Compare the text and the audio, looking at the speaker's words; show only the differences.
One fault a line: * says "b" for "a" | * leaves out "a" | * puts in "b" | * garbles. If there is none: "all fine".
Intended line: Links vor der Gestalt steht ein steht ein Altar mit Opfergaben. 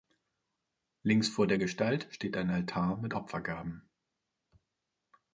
* leaves out "steht ein"